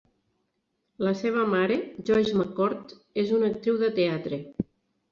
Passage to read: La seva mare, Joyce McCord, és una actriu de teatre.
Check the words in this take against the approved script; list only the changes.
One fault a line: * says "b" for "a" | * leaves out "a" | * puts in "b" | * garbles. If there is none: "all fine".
all fine